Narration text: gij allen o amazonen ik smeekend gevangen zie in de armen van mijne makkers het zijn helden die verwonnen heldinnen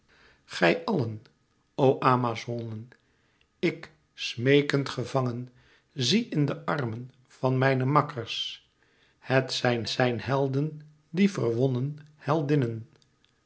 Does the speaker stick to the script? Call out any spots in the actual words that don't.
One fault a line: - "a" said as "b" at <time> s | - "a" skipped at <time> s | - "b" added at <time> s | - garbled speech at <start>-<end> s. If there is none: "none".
- "zijn" added at 9.9 s